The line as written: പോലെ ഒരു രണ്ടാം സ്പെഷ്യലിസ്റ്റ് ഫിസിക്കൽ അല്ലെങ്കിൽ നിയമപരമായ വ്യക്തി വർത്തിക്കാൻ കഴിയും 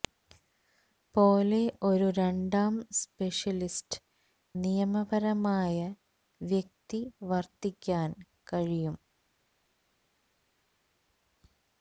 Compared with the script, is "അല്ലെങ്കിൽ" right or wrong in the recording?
wrong